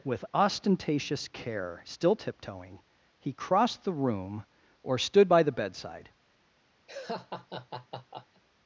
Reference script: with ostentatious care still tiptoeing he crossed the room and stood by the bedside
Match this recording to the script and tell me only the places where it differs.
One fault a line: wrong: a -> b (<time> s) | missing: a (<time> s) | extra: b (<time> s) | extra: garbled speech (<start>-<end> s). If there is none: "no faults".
wrong: and -> or (4.8 s)